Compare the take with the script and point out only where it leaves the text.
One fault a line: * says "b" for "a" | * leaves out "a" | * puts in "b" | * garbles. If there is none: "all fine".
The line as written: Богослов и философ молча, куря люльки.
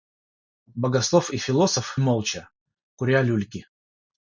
all fine